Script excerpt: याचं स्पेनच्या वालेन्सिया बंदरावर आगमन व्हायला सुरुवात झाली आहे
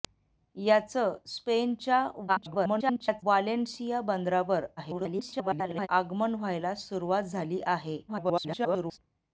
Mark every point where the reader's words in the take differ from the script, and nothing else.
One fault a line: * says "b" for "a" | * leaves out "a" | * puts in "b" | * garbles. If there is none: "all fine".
* garbles
* garbles
* garbles